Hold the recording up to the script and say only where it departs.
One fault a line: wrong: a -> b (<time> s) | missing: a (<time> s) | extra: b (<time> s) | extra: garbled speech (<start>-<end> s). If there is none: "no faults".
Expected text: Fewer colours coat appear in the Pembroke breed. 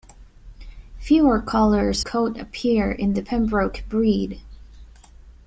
no faults